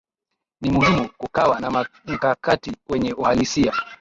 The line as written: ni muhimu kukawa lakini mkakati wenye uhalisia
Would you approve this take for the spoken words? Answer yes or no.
no